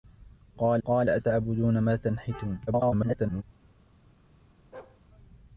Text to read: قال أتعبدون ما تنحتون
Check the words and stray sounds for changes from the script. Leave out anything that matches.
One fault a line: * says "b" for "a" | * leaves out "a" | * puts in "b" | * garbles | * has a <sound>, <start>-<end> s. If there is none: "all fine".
* puts in "قال"
* garbles
* has a bark, 4.7-5.0 s